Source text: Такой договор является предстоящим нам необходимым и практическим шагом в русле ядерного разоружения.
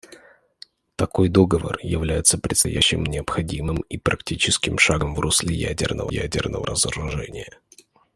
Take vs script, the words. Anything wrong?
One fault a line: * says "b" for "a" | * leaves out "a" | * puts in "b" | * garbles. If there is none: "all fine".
* leaves out "нам"
* puts in "ядерного"